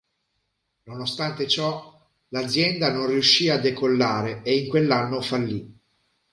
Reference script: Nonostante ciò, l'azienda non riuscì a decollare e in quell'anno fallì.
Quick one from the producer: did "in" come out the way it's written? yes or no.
yes